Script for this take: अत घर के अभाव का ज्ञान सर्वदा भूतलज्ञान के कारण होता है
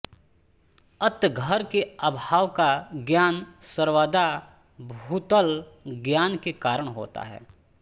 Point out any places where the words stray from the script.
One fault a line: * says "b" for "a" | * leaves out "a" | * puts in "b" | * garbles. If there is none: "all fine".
all fine